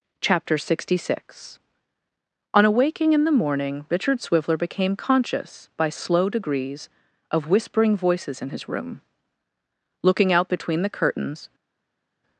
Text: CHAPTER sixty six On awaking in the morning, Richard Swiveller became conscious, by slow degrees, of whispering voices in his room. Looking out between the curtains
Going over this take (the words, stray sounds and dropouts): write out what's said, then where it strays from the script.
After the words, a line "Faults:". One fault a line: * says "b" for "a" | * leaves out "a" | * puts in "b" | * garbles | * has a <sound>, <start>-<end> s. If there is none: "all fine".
CHAPTER sixty six On awaking in the morning, Richard Swiveller became conscious, by slow degrees, of whispering voices in his room. Looking out between the curtains
Faults:
all fine